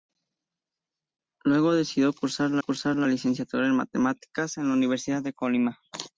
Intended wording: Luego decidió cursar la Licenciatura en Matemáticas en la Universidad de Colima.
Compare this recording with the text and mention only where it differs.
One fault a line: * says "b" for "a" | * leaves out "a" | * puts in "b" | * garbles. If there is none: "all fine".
* puts in "cursar la"